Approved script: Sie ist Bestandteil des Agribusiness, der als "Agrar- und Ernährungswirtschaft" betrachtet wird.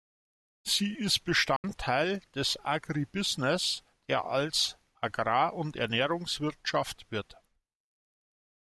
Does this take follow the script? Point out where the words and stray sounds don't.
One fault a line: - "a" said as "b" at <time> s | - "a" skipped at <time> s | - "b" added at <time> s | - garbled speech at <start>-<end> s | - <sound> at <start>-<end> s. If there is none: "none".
- dropout at 1.6-1.6 s
- "betrachtet" skipped at 7.1 s